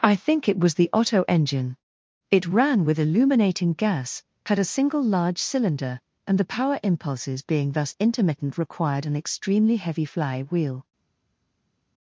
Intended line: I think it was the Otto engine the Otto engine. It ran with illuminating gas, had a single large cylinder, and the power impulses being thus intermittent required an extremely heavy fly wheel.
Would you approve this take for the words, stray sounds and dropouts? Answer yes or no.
no